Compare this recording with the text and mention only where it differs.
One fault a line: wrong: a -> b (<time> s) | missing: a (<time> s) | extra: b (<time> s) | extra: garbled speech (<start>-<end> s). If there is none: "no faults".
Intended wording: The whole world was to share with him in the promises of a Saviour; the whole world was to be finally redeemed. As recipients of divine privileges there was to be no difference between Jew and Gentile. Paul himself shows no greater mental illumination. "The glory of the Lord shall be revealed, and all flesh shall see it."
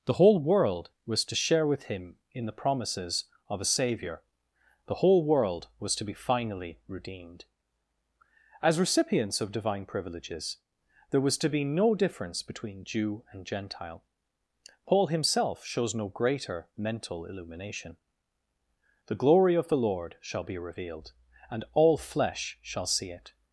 no faults